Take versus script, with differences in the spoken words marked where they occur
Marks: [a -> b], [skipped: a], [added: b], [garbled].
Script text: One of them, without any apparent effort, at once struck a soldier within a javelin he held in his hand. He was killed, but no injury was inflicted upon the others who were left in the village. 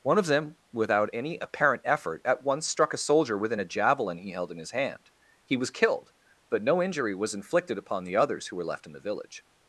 One of them, without any apparent effort, at once struck a soldier within a javelin he held in his hand. He was killed, but no injury was inflicted upon the others who were left in the village.